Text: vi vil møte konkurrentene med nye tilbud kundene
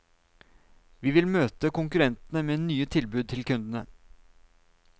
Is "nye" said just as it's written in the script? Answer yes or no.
yes